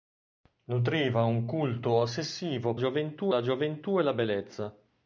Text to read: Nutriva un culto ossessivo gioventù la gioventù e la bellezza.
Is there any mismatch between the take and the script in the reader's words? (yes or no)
no